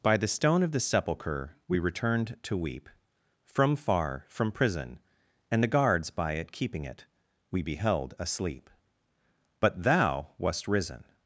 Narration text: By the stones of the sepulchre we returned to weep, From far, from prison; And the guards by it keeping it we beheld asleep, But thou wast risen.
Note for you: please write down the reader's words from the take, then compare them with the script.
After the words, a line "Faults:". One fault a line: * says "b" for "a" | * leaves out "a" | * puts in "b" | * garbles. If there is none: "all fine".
By the stone of the sepulchre we returned to weep, From far, from prison; And the guards by it keeping it we beheld asleep, But thou wast risen.
Faults:
* says "stone" for "stones"